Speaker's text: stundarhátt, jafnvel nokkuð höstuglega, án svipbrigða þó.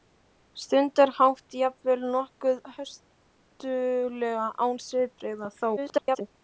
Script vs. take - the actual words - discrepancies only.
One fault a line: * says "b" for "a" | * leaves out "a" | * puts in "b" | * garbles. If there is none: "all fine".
* garbles